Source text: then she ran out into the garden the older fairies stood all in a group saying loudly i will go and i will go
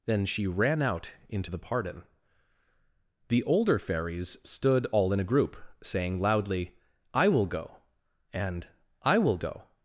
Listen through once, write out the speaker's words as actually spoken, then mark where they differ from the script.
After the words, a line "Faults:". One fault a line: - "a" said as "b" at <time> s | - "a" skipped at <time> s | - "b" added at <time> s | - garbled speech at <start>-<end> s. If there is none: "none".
then she ran out into the pardon the older fairies stood all in a group saying loudly i will go and i will go
Faults:
- "garden" said as "pardon" at 1.6 s